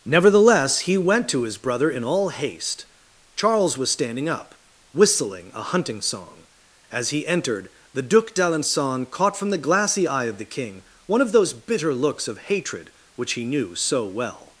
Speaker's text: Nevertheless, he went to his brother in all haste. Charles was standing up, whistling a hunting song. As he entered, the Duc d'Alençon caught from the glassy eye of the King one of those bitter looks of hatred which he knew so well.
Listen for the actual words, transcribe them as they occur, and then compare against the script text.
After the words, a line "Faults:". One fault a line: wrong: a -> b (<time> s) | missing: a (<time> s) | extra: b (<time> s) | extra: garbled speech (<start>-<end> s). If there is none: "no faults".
Nevertheless, he went to his brother in all haste. Charles was standing up, whistling a hunting song. As he entered, the Duc d'Alençon caught from the glassy eye of the King one of those bitter looks of hatred which he knew so well.
Faults:
no faults